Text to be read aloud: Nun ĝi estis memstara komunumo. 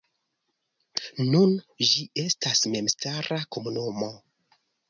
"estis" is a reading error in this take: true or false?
true